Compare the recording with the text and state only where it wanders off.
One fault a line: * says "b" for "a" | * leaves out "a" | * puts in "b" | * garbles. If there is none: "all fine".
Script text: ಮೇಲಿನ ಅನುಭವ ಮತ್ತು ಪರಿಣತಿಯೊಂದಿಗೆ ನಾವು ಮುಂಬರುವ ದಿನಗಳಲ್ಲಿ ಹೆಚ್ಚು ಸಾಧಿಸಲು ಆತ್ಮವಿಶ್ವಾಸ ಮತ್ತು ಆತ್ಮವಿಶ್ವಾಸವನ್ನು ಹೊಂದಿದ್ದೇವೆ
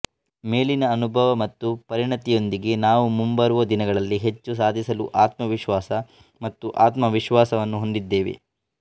all fine